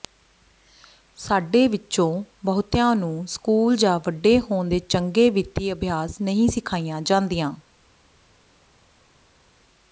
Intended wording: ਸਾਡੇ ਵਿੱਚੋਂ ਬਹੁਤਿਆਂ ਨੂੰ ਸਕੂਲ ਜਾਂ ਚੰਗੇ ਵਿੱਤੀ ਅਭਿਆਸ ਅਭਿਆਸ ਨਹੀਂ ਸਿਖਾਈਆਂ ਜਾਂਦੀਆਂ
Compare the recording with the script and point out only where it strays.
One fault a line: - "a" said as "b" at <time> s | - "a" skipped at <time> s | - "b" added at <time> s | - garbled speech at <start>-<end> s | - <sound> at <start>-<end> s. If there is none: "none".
- "ਵੱਡੇ ਹੋਣ ਦੇ" added at 4.1 s
- "ਅਭਿਆਸ" skipped at 6.2 s